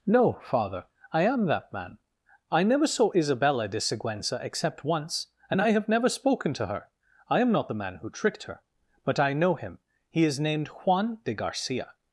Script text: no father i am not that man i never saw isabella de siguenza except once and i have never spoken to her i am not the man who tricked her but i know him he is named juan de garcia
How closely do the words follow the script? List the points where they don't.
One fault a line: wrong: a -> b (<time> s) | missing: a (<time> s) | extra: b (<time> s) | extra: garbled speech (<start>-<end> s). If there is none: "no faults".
missing: not (1.4 s)